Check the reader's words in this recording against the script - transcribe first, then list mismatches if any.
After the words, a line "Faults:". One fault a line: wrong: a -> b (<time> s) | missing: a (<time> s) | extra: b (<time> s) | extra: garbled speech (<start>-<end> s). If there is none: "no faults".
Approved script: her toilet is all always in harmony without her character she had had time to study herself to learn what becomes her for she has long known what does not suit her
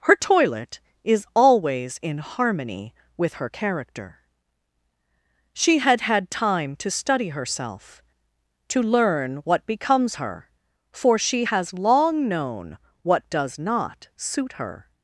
her toilet is always in harmony with her character she had had time to study herself to learn what becomes her for she has long known what does not suit her
Faults:
missing: all (1.3 s)
wrong: without -> with (3.2 s)